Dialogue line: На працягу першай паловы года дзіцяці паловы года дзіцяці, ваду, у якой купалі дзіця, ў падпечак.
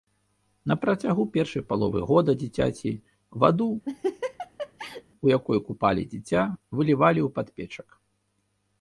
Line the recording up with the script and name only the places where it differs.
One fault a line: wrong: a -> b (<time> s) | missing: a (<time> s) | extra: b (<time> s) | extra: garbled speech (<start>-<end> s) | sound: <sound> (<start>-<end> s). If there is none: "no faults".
missing: паловы года дзіцяці (2.9 s)
sound: laugh (3.9-5.0 s)
extra: вылівалі (6.8 s)